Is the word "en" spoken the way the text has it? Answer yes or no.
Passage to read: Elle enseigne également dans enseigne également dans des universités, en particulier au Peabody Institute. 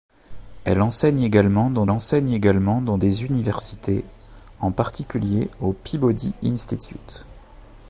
yes